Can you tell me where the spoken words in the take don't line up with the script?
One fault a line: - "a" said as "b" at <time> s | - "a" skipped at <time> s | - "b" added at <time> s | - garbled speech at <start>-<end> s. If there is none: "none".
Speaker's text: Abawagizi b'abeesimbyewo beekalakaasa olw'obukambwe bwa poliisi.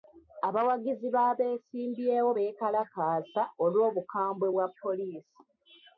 none